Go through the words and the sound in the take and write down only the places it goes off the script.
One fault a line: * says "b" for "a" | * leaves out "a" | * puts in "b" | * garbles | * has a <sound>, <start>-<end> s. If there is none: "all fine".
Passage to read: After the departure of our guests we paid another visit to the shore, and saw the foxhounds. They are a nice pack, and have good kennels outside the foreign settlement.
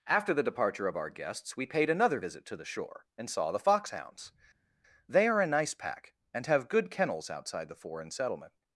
all fine